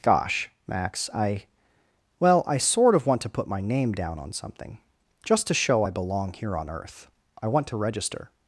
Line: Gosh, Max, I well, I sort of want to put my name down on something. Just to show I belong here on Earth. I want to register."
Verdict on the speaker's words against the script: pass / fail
pass